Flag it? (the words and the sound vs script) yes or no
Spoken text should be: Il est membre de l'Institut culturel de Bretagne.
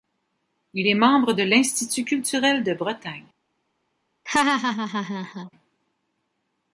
yes